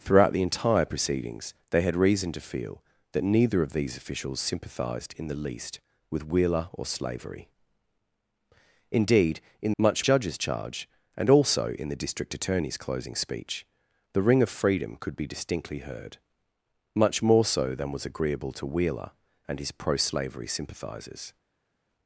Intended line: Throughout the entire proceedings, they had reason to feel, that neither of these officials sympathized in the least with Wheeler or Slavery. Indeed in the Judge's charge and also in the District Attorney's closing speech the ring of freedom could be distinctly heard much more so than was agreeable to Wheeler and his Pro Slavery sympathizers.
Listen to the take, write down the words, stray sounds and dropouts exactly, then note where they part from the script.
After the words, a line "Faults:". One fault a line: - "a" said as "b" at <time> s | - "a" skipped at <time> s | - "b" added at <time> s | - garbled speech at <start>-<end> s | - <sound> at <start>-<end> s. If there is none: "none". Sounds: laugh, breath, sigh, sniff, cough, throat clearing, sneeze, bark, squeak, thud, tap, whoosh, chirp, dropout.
Throughout the entire proceedings, they had reason to feel, that neither of these officials sympathized in the least with Wheeler or Slavery. Indeed in much Judge's charge and also in the District Attorney's closing speech the ring of freedom could be distinctly heard much more so than was agreeable to Wheeler and his Pro Slavery sympathizers.
Faults:
- "the" said as "much" at 9.8 s